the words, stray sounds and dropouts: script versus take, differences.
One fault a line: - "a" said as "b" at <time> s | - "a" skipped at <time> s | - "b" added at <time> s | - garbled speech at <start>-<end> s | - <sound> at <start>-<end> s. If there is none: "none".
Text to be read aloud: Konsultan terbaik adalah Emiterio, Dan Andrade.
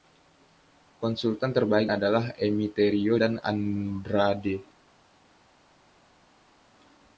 none